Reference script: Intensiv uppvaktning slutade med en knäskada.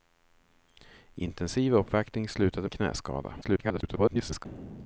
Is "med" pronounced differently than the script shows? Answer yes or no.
yes